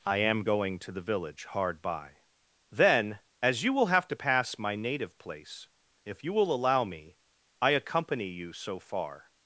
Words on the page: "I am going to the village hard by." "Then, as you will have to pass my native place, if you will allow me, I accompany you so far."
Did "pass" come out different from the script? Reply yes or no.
no